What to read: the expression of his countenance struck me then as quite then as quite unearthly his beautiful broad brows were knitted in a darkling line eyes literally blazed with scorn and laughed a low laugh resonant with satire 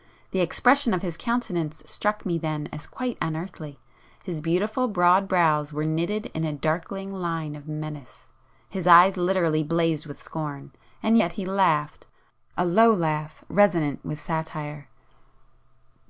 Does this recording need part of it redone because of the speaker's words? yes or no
yes